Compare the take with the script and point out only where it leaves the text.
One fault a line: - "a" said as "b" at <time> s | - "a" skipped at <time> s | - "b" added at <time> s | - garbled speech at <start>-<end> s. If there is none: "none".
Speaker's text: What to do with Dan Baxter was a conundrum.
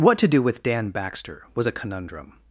none